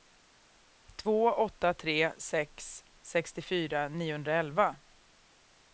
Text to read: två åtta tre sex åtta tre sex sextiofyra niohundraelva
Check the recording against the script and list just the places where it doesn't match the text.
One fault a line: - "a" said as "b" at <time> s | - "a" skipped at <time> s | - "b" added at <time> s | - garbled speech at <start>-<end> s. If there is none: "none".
- "åtta tre sex" skipped at 2.8 s